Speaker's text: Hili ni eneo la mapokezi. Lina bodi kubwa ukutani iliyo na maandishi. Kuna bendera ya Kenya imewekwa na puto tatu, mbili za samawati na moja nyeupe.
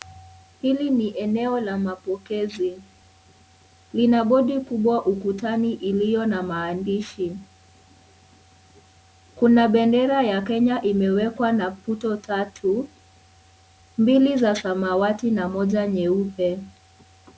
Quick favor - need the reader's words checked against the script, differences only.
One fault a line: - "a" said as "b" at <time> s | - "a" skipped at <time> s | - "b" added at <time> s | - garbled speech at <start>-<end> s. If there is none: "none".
none